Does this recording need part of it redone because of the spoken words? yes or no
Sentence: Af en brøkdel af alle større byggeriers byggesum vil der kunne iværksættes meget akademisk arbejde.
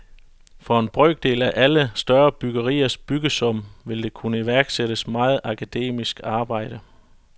yes